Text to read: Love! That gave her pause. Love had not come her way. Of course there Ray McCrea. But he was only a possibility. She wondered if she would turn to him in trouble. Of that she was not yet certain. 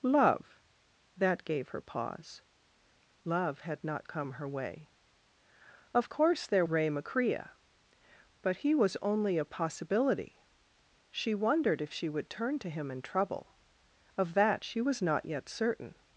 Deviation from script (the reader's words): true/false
false